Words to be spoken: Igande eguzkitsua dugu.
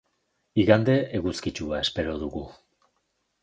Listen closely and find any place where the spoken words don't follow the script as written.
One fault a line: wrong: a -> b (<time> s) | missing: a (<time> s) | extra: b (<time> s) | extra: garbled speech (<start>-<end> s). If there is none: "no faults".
extra: espero (1.9 s)